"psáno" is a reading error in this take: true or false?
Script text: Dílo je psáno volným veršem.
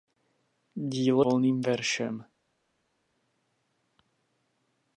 true